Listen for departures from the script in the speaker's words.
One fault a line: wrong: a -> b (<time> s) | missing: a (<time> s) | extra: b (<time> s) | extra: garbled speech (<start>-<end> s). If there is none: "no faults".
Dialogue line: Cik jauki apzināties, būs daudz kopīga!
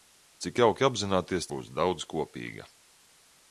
no faults